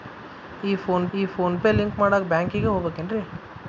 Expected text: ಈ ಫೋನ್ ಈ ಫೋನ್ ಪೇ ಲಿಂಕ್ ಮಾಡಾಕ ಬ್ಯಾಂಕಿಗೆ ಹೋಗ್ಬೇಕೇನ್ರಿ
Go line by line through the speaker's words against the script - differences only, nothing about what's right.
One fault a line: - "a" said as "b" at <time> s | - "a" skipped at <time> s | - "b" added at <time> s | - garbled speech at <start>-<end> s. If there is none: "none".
none